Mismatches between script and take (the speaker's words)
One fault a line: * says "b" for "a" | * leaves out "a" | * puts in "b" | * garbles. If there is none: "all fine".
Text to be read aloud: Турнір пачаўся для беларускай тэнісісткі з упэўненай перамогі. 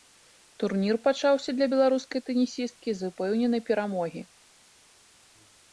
all fine